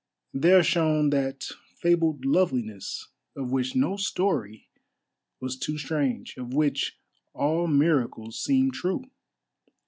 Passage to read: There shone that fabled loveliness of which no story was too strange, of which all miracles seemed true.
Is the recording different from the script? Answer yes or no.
no